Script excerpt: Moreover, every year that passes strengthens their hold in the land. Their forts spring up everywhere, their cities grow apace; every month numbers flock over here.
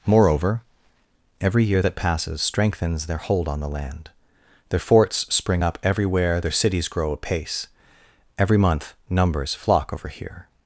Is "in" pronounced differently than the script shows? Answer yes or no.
yes